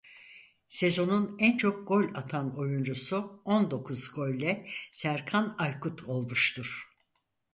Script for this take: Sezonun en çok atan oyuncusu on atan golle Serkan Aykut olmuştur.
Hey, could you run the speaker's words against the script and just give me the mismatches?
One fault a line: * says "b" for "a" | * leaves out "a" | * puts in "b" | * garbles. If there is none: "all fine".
* puts in "gol"
* says "dokuz" for "atan"